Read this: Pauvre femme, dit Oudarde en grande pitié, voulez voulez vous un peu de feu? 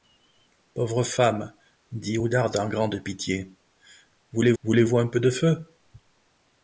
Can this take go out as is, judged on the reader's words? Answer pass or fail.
pass